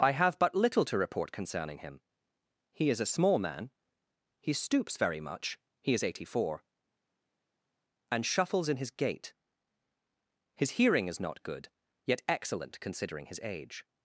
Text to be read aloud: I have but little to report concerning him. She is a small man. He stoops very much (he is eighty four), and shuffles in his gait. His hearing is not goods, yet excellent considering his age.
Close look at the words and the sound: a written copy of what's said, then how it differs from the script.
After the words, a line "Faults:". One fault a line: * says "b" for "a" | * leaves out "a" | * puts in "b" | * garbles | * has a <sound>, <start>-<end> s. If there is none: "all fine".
I have but little to report concerning him. He is a small man. He stoops very much (he is eighty four), and shuffles in his gait. His hearing is not good, yet excellent considering his age.
Faults:
* says "He" for "She"
* says "good" for "goods"